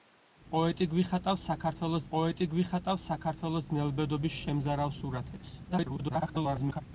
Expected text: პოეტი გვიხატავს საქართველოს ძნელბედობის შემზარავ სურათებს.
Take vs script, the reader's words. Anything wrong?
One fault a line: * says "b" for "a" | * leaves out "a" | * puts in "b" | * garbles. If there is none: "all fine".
* puts in "პოეტი გვიხატავს საქართველოს"
* garbles